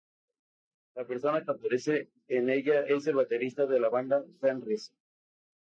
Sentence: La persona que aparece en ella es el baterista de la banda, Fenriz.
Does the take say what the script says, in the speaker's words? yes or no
yes